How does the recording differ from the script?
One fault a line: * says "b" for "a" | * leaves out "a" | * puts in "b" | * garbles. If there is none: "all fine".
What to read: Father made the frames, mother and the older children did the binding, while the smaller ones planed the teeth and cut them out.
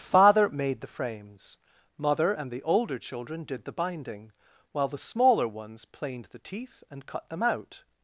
all fine